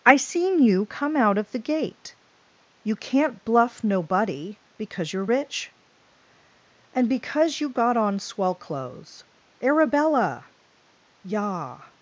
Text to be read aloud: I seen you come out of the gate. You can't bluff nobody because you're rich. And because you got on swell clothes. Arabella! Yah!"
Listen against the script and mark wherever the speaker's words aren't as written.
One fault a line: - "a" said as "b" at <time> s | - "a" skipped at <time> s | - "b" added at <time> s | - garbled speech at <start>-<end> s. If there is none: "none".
none